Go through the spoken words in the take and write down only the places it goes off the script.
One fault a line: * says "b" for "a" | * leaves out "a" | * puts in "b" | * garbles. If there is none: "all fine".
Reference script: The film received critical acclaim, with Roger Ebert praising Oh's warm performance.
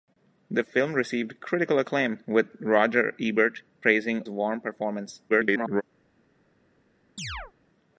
* leaves out "Oh's"
* garbles